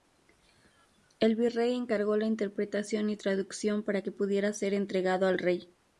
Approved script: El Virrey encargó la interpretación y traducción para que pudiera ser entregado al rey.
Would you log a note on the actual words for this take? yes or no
no